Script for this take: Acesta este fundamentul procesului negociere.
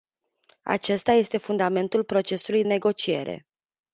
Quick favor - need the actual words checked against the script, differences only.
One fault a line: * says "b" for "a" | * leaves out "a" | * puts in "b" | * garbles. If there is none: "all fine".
all fine